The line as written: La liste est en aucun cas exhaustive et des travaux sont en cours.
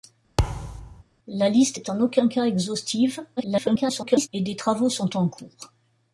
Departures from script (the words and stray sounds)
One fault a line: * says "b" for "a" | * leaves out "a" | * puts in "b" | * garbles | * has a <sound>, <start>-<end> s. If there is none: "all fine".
* has a thud, 0.4-1.0 s
* garbles